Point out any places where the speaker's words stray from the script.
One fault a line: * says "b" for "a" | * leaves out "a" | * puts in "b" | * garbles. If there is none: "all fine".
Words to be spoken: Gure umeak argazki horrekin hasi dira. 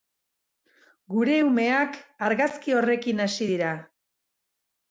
all fine